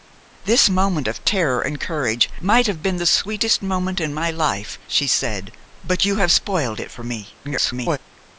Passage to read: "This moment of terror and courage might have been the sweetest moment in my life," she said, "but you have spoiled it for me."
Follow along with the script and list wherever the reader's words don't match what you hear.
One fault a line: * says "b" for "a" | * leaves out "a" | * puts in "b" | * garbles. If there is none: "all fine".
* garbles